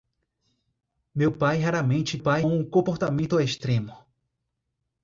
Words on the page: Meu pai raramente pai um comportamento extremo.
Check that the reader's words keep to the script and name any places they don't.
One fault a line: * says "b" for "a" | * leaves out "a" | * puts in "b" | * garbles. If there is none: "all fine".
all fine